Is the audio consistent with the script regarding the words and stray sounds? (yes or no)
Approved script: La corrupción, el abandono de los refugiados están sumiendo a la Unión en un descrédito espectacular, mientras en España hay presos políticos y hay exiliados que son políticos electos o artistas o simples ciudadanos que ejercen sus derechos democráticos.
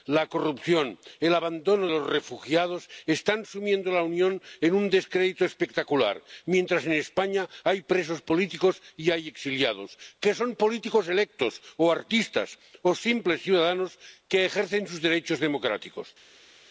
no